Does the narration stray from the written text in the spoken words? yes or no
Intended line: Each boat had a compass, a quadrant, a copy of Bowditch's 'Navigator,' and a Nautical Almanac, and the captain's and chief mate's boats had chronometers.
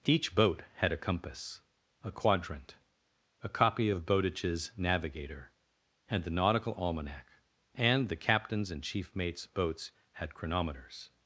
yes